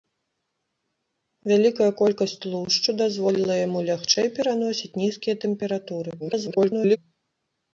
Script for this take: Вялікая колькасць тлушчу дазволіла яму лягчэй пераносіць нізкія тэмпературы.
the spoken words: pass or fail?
fail